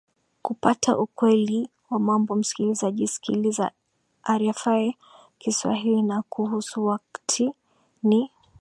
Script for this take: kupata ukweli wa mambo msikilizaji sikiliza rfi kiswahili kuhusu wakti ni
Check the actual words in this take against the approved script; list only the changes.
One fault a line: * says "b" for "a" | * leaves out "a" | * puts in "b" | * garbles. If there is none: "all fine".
* puts in "na"